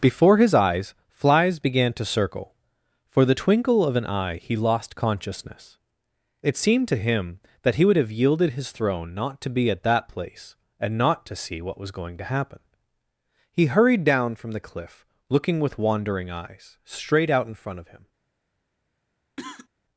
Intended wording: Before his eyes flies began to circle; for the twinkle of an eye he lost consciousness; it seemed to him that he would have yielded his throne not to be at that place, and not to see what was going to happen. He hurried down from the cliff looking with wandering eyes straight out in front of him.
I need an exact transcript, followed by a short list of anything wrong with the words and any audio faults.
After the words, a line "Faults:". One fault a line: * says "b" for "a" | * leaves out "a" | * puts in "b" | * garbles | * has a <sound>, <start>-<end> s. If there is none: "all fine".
Before his eyes flies began to circle; for the twinkle of an eye he lost consciousness; it seemed to him that he would have yielded his throne not to be at that place, and not to see what was going to happen. He hurried down from the cliff looking with wandering eyes straight out in front of him.
Faults:
* has a cough, 19.4-19.7 s